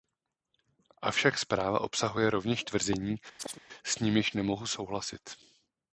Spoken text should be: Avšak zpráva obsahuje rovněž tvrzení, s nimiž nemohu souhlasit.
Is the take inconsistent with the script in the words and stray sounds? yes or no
yes